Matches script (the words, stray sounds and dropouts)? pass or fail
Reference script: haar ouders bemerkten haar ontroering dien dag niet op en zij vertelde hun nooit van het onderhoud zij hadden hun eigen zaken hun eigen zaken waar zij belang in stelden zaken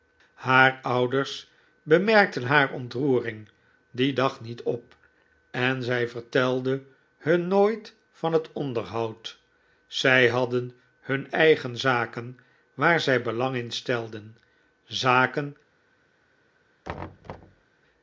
fail